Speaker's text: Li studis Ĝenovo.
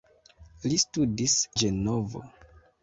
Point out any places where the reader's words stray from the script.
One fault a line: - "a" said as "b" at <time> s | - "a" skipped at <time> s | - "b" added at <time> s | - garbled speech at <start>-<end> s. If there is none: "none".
none